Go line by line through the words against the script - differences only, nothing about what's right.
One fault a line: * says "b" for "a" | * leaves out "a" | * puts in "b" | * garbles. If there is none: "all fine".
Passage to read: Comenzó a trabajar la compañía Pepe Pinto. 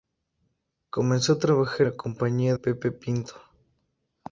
all fine